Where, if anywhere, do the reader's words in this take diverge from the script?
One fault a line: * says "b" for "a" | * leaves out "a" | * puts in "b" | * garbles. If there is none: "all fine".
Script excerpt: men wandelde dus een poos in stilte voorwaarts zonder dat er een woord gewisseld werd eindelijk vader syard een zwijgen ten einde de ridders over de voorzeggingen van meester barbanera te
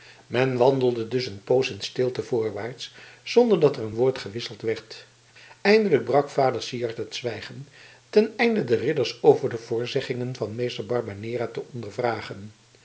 * puts in "brak"
* says "het" for "een"